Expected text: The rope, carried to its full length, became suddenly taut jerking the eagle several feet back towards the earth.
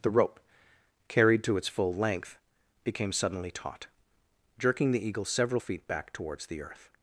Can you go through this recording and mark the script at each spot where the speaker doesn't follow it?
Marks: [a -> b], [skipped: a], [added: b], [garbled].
The rope, carried to its full length, became suddenly taut jerking the eagle several feet back towards the earth.